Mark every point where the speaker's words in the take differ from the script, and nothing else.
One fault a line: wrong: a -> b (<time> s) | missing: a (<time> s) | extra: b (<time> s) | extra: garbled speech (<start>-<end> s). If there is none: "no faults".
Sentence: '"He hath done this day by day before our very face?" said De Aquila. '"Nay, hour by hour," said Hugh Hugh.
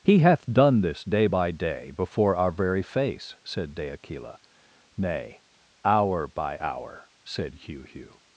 no faults